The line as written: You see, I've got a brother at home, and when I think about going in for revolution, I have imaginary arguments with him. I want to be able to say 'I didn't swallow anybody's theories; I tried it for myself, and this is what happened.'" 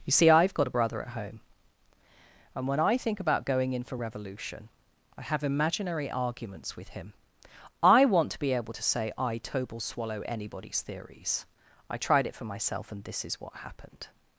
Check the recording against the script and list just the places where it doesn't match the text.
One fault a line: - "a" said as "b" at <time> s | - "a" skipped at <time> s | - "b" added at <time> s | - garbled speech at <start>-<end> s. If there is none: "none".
- "didn't" said as "tobel" at 9.4 s